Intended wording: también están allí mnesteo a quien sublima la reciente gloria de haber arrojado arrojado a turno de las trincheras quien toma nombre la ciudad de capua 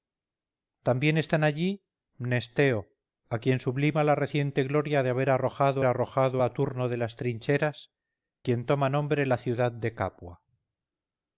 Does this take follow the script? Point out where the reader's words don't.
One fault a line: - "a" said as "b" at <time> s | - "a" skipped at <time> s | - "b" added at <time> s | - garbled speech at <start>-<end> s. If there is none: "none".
none